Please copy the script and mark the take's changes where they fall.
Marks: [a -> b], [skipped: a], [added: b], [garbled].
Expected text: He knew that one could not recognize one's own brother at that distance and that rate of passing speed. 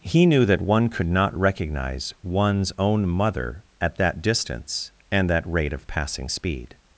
He knew that one could not recognize one's own [brother -> mother] at that distance and that rate of passing speed.